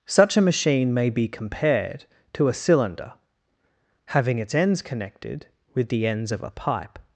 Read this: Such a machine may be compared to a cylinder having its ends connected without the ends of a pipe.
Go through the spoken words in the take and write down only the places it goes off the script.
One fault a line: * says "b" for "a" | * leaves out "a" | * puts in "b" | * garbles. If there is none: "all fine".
* says "with" for "without"